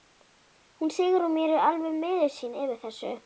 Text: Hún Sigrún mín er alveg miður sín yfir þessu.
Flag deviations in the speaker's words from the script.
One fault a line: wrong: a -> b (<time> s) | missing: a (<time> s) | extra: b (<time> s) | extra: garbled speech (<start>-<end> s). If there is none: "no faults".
no faults